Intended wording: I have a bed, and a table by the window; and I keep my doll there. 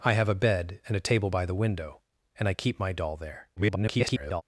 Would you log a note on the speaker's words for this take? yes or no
yes